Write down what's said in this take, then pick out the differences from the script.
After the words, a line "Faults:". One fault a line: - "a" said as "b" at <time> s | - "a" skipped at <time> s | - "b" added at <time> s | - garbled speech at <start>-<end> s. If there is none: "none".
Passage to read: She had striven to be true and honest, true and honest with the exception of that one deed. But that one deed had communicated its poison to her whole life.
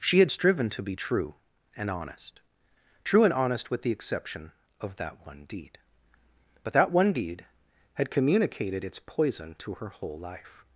She had striven to be true and honest, true and honest with the exception of that one deed. But that one deed had communicated its poison to her whole life.
Faults:
none